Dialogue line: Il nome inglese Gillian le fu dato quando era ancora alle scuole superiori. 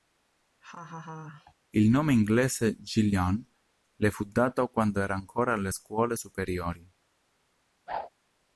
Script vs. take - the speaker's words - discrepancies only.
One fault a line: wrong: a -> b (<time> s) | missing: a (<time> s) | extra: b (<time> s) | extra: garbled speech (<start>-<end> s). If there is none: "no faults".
no faults